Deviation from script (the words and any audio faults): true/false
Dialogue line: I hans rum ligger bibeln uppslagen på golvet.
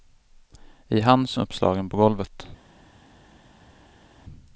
true